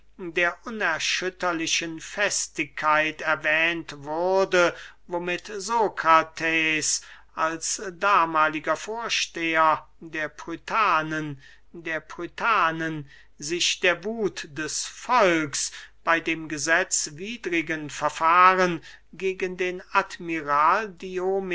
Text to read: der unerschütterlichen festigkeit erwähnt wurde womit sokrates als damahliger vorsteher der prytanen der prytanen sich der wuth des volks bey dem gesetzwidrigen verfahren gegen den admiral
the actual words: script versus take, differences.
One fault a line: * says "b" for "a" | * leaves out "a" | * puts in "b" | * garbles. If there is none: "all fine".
all fine